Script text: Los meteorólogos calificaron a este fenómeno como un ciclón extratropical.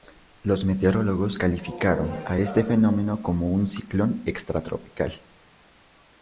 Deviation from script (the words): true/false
false